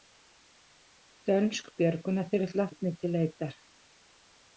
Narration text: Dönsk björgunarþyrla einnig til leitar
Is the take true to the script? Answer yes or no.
yes